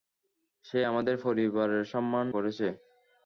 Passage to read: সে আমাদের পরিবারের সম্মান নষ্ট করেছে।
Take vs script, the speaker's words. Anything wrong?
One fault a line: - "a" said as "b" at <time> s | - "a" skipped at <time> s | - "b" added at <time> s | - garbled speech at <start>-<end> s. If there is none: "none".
- "নষ্ট" skipped at 2.3 s